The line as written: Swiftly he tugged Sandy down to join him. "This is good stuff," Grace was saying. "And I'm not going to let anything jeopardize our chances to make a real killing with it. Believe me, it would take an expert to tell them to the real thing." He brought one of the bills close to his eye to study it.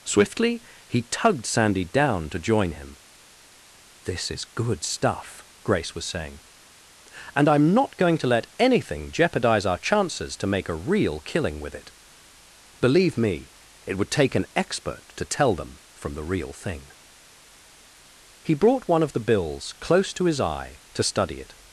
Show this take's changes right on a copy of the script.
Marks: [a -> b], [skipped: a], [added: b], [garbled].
Swiftly he tugged Sandy down to join him. "This is good stuff," Grace was saying. "And I'm not going to let anything jeopardize our chances to make a real killing with it. Believe me, it would take an expert to tell them [to -> from] the real thing." He brought one of the bills close to his eye to study it.